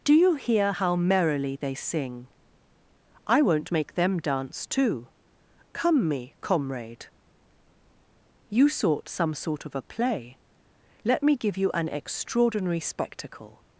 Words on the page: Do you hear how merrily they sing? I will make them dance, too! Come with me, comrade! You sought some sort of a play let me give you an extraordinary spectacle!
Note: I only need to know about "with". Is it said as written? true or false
false